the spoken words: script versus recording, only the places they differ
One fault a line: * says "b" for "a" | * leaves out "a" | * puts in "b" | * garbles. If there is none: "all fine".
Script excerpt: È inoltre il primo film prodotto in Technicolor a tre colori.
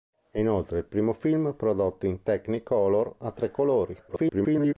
* garbles